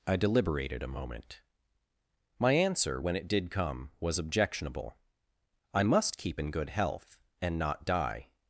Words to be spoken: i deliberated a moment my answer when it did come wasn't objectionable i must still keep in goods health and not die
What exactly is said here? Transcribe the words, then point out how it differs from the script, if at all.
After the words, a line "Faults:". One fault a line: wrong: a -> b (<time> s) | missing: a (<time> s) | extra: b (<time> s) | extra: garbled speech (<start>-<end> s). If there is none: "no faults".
i deliberated a moment my answer when it did come was objectionable i must keep in good health and not die
Faults:
wrong: wasn't -> was (4.0 s)
missing: still (6.2 s)
wrong: goods -> good (6.5 s)